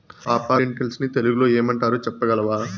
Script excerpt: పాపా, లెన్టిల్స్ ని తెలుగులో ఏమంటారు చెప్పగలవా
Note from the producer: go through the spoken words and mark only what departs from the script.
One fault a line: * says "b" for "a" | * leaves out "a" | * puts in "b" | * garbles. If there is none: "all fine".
all fine